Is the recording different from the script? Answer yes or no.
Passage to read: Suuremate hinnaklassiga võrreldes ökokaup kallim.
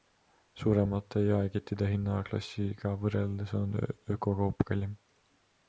yes